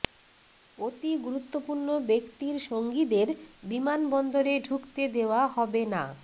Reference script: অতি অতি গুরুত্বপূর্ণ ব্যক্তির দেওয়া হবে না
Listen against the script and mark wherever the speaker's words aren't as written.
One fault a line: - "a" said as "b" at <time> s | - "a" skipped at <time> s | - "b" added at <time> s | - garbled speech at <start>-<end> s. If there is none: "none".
- "অতি" skipped at 1.1 s
- "সঙ্গীদের বিমানবন্দরে ঢুকতে" added at 2.7 s